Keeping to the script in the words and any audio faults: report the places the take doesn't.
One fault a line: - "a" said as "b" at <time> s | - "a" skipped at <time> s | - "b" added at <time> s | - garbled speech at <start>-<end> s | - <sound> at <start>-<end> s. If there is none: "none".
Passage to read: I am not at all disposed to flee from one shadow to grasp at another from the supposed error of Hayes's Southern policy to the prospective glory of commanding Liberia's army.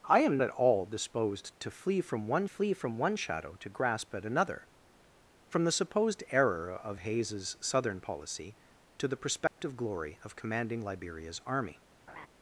- "not" skipped at 0.4 s
- "flee from one" added at 2.4 s
- dropout at 9.5-9.6 s
- laugh at 12.1-12.3 s